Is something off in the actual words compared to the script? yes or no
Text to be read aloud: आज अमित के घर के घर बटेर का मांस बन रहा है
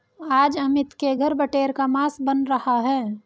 yes